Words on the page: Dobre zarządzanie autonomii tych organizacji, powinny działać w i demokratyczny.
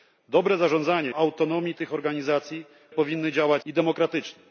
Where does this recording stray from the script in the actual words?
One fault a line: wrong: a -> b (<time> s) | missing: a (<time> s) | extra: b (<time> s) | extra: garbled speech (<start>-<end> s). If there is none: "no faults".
no faults